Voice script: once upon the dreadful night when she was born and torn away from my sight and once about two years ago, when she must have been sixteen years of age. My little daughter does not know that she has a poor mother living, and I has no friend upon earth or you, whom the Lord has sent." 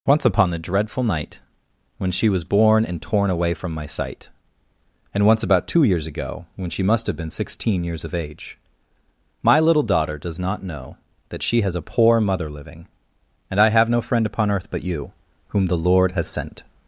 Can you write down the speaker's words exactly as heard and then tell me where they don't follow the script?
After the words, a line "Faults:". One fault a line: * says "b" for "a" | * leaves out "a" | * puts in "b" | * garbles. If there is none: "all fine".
once upon the dreadful night when she was born and torn away from my sight and once about two years ago, when she must have been sixteen years of age. My little daughter does not know that she has a poor mother living, and I have no friend upon earth but you, whom the Lord has sent."
Faults:
* says "have" for "has"
* says "but" for "or"